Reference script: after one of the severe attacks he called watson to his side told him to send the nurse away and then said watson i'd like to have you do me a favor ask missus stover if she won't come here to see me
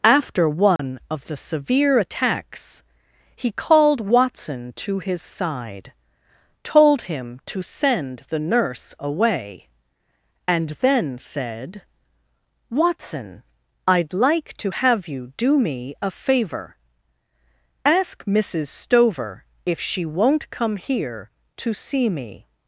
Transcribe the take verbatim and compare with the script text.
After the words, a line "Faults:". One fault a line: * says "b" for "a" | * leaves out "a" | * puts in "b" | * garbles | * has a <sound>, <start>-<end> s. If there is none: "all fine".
after one of the severe attacks he called watson to his side told him to send the nurse away and then said watson i'd like to have you do me a favor ask missus stover if she won't come here to see me
Faults:
* has a dropout, 0.8-0.8 s